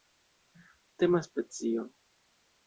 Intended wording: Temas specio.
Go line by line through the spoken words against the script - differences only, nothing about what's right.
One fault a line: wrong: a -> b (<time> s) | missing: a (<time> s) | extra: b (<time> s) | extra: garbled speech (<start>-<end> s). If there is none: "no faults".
no faults